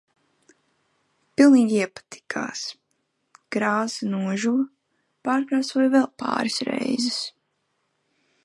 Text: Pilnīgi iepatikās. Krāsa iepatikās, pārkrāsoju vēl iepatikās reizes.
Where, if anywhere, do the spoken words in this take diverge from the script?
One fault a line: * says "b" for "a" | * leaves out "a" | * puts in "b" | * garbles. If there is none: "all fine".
* says "nožuva" for "iepatikās"
* says "pāris" for "iepatikās"